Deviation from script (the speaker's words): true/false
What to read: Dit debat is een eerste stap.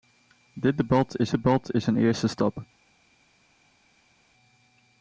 true